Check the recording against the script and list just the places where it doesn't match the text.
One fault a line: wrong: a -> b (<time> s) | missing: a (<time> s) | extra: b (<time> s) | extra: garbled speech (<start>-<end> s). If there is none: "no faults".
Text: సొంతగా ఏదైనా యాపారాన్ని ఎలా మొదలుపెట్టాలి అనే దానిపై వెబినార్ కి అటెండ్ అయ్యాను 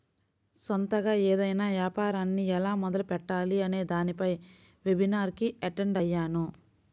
no faults